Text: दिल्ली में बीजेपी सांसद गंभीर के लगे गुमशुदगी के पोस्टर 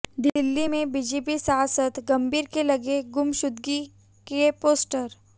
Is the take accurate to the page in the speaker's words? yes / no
yes